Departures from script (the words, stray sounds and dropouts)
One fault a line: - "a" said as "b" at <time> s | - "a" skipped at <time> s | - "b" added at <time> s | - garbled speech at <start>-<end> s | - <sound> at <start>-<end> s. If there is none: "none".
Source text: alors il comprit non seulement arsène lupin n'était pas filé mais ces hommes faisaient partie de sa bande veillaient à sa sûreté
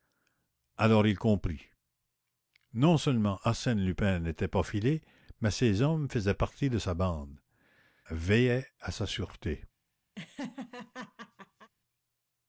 - laugh at 10.1-11.7 s